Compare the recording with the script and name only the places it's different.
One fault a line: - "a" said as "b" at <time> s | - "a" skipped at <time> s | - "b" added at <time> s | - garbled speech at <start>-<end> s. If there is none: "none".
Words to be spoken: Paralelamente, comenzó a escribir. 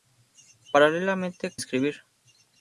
- "comenzó" skipped at 1.6 s